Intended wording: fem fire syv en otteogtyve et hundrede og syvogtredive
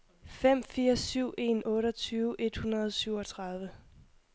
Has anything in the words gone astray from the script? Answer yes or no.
no